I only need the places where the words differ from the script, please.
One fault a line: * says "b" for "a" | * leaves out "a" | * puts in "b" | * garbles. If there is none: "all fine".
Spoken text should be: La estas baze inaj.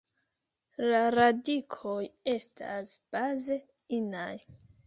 * puts in "radikoj"